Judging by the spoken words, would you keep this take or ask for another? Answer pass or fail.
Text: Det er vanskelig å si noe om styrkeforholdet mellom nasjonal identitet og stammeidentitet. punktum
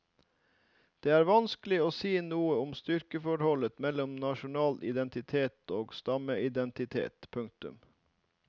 pass